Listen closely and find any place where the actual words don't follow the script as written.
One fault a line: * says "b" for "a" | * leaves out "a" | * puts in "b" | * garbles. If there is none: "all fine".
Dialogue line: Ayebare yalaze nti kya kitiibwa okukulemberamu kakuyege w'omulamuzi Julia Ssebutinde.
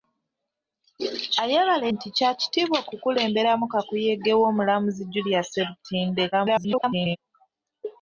* leaves out "yalaze"
* garbles